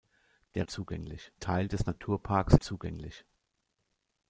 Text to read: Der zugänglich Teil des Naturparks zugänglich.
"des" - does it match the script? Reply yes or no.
yes